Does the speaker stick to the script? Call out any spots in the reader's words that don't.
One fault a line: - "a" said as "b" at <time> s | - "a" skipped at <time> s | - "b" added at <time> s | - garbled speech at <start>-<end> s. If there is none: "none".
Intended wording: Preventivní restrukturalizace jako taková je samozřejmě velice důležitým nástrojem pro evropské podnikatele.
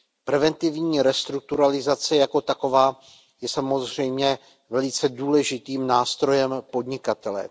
- "pro evropské" skipped at 6.6 s